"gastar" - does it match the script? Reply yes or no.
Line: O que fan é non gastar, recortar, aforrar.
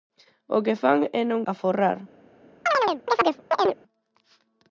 no